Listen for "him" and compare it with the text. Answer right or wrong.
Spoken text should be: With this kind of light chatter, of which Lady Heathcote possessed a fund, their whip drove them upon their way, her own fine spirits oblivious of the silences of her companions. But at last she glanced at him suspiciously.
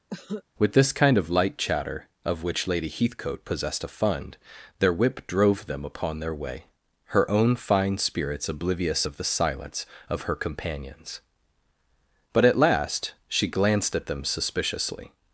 wrong